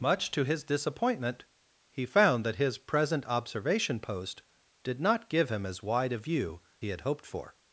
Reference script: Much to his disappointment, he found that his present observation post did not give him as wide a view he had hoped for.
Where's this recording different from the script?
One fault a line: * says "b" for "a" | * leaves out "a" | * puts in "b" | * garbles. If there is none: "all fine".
all fine